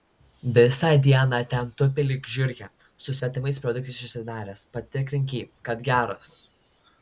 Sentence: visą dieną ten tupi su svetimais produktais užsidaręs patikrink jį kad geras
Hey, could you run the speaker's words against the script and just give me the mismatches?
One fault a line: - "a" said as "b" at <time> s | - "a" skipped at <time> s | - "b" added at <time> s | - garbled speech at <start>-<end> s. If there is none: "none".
- "lyg žiurkė" added at 2.1 s